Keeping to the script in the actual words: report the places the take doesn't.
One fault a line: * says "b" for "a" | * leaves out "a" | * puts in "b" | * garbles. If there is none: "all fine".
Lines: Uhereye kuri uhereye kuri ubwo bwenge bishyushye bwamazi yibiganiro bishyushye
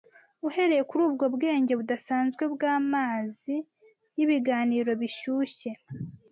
* leaves out "uhereye kuri"
* says "budasanzwe" for "bishyushye"